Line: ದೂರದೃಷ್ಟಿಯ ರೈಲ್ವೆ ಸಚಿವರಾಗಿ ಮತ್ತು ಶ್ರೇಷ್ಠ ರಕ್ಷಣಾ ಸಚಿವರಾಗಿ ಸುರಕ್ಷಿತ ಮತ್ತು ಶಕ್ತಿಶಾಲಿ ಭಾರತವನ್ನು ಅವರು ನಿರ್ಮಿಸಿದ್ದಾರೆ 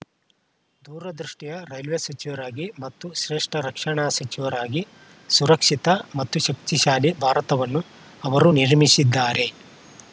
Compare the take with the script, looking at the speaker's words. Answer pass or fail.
pass